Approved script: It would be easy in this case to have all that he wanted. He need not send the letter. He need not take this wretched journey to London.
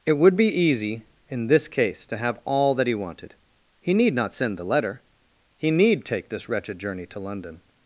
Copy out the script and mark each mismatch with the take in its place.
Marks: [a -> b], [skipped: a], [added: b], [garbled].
It would be easy in this case to have all that he wanted. He need not send the letter. He need [skipped: not] take this wretched journey to London.